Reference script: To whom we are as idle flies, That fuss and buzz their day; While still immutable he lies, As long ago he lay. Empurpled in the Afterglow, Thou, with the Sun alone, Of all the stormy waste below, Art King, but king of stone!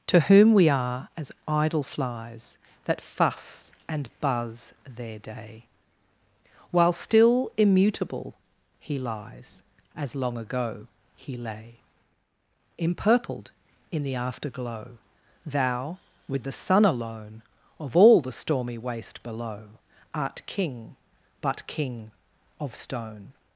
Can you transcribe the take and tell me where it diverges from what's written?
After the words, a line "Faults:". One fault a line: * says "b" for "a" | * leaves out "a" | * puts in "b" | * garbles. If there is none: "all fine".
To whom we are as idle flies, That fuss and buzz their day; While still immutable he lies, As long ago he lay. Empurpled in the Afterglow, Thou, with the Sun alone, Of all the stormy waste below, Art King, but king of stone!
Faults:
all fine